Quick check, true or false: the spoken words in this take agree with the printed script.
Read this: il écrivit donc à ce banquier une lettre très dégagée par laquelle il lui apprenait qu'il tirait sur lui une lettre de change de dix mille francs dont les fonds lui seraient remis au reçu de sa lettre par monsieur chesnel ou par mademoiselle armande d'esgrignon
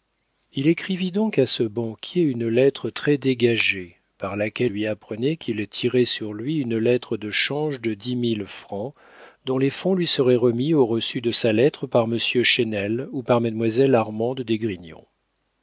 false